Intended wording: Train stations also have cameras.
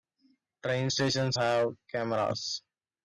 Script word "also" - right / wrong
wrong